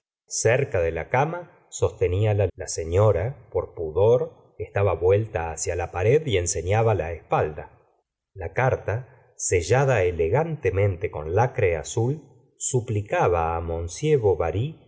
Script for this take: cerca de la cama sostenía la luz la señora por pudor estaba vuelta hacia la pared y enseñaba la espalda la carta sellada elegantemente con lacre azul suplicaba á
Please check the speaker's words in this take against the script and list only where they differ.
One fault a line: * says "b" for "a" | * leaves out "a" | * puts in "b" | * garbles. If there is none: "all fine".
* leaves out "luz"